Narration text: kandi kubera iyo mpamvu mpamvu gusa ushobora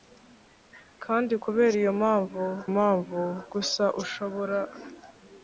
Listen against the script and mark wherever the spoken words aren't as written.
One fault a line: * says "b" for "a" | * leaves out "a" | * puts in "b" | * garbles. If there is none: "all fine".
all fine